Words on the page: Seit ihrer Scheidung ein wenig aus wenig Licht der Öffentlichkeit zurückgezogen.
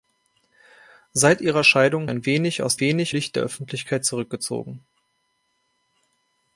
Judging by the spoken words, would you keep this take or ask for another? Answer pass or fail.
pass